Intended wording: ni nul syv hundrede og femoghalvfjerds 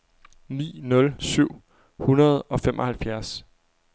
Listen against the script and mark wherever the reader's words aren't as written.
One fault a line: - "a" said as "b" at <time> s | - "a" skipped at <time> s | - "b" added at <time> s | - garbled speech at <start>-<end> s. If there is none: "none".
none